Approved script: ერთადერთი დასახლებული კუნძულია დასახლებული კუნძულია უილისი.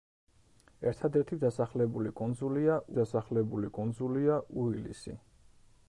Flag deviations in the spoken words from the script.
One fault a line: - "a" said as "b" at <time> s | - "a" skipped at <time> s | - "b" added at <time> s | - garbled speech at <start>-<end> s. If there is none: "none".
none